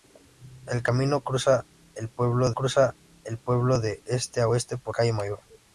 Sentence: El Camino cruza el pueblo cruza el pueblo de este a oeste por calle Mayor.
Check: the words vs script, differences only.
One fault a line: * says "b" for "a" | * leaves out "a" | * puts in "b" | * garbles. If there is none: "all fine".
all fine